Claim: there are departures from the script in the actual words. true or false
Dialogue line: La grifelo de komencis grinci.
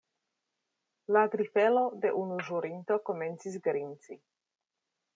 true